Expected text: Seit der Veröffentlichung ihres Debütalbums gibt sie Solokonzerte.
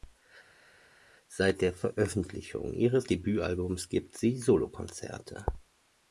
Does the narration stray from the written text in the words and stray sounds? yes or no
no